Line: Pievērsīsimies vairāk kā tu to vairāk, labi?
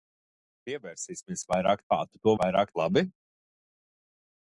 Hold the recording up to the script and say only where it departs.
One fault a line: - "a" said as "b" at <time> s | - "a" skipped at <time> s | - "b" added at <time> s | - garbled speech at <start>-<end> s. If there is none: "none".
none